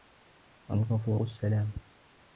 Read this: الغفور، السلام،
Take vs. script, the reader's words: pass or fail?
pass